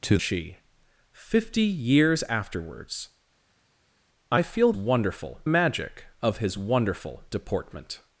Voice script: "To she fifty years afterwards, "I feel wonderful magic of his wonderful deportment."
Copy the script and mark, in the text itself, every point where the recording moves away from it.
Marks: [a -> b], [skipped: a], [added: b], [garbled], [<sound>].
"To she fifty years afterwards, "I feel wonderful magic of his wonderful deportment."